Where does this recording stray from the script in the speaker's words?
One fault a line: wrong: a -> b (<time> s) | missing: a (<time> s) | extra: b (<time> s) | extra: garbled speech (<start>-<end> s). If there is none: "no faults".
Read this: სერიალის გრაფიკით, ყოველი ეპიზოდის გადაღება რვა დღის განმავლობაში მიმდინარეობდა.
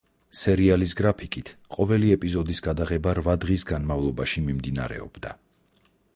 no faults